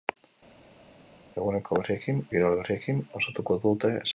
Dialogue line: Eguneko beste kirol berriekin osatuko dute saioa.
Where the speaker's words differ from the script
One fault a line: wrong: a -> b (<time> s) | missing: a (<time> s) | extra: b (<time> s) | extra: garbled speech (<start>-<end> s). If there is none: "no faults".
wrong: beste -> berriekin (1.8 s)